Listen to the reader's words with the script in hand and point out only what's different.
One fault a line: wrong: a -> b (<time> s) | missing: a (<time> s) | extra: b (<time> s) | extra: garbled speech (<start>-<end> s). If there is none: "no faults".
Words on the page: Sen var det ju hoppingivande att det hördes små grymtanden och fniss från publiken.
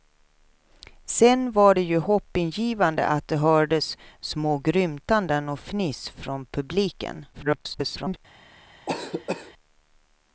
extra: garbled speech (7.3-8.2 s)